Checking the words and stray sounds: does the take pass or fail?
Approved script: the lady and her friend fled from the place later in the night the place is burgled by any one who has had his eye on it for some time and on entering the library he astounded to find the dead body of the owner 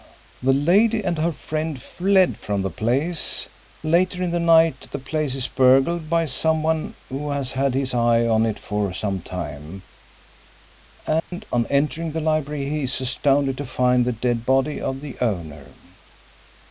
fail